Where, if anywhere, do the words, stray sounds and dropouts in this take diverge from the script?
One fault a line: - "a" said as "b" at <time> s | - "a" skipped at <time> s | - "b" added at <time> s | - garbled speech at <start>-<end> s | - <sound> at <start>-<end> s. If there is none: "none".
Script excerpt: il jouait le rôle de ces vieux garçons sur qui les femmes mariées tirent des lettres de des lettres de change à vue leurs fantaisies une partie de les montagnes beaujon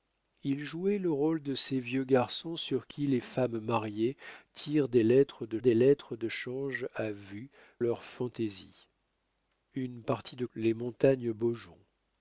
none